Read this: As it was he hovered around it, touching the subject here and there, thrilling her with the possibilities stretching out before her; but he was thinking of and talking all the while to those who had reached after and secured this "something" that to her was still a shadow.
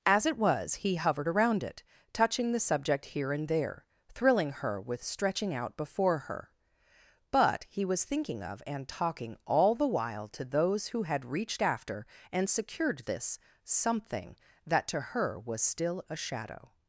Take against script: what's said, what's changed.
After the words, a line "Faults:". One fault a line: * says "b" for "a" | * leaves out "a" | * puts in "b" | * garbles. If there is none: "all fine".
As it was he hovered around it, touching the subject here and there, thrilling her with stretching out before her; but he was thinking of and talking all the while to those who had reached after and secured this "something" that to her was still a shadow.
Faults:
* leaves out "the possibilities"